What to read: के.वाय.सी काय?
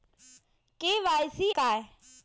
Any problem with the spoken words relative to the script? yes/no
no